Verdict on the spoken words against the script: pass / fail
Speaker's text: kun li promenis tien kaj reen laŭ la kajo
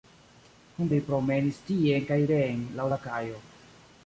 pass